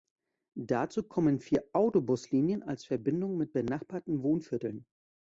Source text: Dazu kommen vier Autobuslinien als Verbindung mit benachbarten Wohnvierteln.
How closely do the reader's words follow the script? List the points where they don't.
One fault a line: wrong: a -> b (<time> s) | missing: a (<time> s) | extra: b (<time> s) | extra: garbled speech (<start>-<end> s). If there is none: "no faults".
no faults